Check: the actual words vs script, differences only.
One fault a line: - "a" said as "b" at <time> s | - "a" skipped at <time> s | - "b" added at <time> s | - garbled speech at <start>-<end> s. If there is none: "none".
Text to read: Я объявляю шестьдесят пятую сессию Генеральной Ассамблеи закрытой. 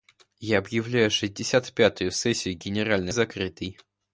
- "Ассамблеи" skipped at 3.1 s